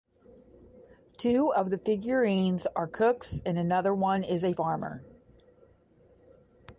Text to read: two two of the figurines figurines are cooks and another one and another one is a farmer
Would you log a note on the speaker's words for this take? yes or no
yes